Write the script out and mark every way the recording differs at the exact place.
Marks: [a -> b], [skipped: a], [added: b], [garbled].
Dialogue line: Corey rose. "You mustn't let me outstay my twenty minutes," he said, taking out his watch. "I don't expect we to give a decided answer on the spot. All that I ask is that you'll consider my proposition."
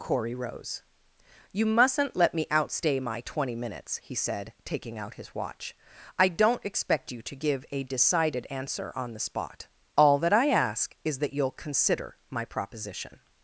Corey rose. "You mustn't let me outstay my twenty minutes," he said, taking out his watch. "I don't expect [we -> you] to give a decided answer on the spot. All that I ask is that you'll consider my proposition."